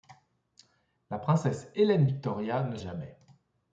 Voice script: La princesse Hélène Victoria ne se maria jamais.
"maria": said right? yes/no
no